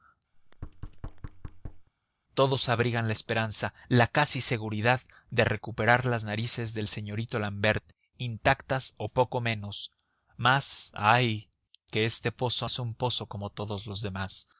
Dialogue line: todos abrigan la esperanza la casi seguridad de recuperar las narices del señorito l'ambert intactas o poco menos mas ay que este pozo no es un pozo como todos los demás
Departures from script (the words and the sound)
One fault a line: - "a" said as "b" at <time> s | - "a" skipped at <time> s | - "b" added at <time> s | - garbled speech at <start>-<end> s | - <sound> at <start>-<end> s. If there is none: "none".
- thud at 0.3-1.9 s
- "no" skipped at 12.7 s